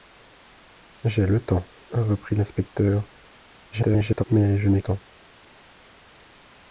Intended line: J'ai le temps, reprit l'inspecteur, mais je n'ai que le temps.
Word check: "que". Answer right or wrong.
wrong